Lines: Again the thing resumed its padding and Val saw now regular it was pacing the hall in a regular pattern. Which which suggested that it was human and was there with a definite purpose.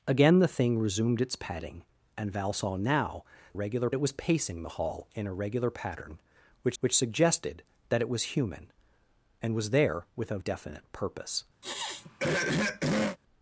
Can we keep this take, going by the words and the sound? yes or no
no